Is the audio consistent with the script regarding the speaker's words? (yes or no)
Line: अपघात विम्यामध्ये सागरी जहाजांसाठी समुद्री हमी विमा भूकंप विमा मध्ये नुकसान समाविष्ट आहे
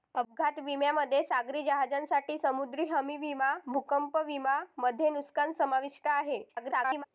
no